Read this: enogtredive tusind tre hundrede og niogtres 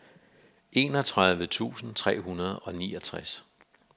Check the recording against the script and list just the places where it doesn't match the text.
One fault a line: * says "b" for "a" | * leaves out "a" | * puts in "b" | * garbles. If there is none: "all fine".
all fine